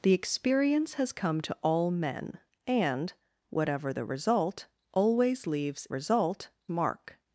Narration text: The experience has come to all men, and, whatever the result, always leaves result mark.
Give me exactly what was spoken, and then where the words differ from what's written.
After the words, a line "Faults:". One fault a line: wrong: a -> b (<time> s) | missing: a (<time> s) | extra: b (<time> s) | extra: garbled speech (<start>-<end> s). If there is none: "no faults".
The experience has come to all men, and, whatever the result, always leaves result mark.
Faults:
no faults